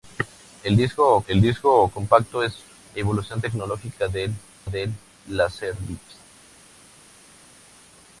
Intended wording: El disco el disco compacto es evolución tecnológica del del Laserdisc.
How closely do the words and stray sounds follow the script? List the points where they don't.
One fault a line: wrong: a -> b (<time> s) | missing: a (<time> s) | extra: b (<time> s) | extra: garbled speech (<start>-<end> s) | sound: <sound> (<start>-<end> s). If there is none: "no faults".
no faults